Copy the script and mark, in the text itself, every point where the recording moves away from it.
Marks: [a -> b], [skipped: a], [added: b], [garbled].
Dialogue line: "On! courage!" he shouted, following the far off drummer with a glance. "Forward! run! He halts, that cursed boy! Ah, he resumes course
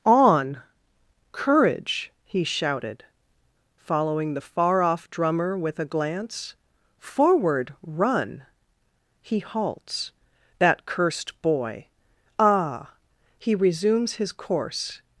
"On! courage!" he shouted, following the far off drummer with a glance. "Forward! run! He halts, that cursed boy! Ah, he resumes [added: his] course